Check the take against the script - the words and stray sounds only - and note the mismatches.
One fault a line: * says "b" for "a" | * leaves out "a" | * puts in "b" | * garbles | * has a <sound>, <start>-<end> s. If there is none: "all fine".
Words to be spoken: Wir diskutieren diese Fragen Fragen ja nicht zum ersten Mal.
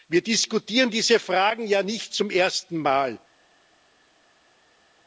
* leaves out "Fragen"